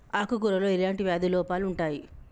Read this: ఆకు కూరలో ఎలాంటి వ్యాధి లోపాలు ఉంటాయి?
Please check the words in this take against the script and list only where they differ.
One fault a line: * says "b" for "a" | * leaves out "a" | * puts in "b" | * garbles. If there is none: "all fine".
all fine